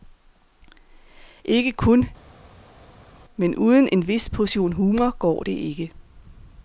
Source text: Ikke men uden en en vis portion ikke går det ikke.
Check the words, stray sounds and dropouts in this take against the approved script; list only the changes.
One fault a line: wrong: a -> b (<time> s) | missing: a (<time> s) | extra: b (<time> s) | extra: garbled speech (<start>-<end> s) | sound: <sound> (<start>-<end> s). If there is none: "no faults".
extra: kun (1.7 s)
missing: en (4.1 s)
wrong: ikke -> humor (4.7 s)